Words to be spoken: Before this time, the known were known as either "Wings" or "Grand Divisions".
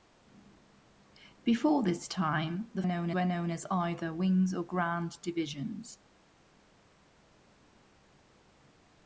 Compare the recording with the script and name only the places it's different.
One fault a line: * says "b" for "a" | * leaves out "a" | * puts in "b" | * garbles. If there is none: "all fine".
all fine